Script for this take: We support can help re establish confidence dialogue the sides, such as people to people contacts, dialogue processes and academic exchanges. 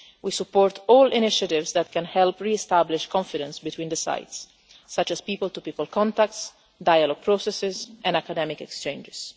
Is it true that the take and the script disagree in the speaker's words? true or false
true